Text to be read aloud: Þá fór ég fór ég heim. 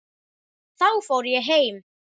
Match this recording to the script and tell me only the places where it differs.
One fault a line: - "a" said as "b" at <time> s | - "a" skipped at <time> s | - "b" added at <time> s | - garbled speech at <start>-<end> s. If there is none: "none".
- "fór ég" skipped at 1.5 s